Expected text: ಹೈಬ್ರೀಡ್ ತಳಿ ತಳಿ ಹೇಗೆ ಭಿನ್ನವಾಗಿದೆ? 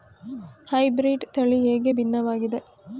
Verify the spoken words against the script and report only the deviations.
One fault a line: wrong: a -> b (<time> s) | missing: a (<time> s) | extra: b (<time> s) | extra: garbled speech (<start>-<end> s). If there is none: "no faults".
missing: ತಳಿ (1.6 s)